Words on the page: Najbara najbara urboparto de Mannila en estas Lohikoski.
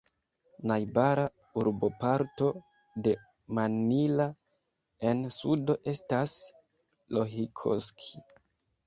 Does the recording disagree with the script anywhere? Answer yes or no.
yes